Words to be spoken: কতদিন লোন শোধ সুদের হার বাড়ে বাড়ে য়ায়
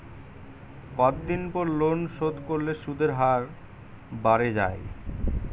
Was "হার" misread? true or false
false